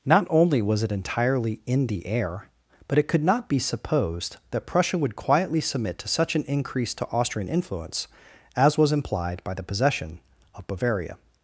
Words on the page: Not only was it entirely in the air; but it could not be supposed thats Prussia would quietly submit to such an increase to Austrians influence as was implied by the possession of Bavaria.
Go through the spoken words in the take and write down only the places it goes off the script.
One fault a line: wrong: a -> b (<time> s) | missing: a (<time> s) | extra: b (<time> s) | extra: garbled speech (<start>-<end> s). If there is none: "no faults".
wrong: thats -> that (4.5 s)
wrong: Austrians -> Austrian (7.1 s)